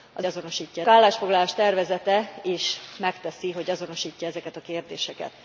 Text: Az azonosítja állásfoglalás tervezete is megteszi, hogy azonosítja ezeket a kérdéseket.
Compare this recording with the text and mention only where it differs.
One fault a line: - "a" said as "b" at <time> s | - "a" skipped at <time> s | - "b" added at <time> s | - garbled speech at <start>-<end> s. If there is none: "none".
none